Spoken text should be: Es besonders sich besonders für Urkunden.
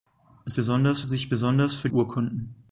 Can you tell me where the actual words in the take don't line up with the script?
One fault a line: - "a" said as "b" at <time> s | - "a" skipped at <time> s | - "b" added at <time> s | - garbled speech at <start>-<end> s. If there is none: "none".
none